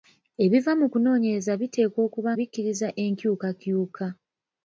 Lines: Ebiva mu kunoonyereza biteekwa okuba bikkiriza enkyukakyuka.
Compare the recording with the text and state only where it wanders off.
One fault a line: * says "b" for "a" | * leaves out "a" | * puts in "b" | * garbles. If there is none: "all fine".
all fine